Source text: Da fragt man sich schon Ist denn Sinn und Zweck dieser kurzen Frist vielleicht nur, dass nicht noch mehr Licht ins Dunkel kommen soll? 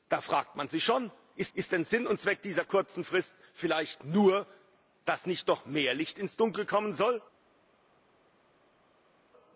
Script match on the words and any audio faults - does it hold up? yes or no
no